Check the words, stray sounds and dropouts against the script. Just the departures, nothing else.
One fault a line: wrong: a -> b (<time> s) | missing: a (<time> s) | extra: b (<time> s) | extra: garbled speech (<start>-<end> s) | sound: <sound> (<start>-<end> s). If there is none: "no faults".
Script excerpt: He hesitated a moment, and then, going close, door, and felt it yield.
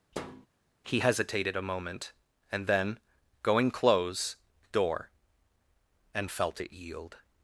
sound: thud (0.1-0.5 s)